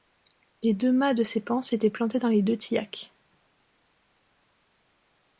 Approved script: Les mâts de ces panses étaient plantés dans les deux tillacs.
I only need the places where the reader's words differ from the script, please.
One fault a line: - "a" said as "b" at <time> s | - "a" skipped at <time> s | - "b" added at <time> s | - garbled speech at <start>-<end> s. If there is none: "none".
- "deux" added at 0.7 s